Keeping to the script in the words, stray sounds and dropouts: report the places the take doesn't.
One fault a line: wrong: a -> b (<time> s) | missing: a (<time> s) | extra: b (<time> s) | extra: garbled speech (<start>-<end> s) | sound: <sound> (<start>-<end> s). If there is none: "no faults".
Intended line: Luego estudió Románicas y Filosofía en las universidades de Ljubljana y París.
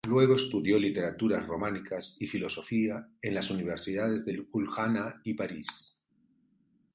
extra: Literaturas (0.8 s)